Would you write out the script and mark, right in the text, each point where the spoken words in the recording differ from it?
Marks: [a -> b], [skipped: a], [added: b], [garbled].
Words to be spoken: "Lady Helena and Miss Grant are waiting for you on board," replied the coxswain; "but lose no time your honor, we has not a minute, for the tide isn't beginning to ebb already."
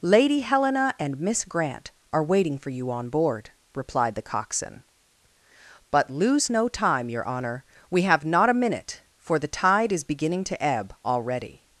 "Lady Helena and Miss Grant are waiting for you on board," replied the coxswain; "but lose no time your honor, we [has -> have] not a minute, for the tide [isn't -> is] beginning to ebb already."